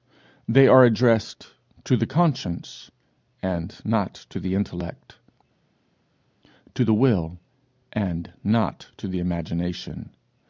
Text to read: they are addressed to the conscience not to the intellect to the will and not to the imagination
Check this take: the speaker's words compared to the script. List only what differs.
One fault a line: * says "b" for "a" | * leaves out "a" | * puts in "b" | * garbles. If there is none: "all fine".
* puts in "and"